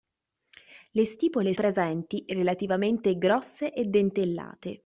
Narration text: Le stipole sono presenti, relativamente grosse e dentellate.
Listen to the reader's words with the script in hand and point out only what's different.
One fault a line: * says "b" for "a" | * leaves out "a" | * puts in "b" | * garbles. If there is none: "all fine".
* leaves out "sono"